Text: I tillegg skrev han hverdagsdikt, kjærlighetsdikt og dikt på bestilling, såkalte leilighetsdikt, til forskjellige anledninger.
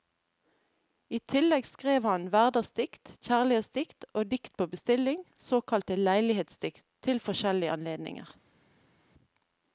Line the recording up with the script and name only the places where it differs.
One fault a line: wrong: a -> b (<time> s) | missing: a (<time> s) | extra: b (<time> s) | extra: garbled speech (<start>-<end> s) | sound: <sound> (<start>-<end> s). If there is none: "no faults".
no faults